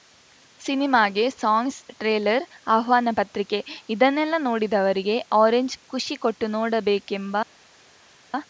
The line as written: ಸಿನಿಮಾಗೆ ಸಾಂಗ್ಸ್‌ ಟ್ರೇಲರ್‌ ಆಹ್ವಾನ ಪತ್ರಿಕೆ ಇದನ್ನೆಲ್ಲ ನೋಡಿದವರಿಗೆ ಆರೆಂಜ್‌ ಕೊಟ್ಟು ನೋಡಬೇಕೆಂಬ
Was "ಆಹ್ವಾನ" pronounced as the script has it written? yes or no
yes